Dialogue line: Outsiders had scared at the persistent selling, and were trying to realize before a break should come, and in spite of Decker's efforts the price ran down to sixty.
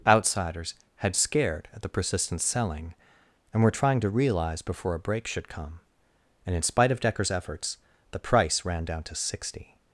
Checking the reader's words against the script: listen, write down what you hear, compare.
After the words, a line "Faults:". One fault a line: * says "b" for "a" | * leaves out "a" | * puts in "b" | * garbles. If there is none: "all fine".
Outsiders had scared at the persistent selling, and were trying to realize before a break should come, and in spite of Decker's efforts the price ran down to sixty.
Faults:
all fine